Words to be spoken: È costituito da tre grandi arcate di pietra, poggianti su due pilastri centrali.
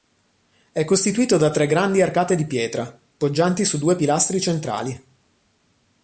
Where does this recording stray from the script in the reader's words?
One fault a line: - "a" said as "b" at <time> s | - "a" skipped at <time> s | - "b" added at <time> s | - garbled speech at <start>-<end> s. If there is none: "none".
none